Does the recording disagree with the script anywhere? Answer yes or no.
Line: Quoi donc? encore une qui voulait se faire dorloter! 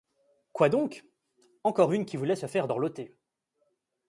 no